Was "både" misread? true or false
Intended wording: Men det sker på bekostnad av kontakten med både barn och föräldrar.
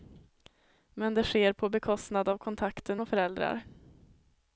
true